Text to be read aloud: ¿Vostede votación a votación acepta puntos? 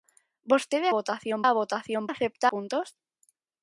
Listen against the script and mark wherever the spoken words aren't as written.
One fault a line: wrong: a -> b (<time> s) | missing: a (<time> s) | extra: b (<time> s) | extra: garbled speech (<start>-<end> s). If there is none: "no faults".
no faults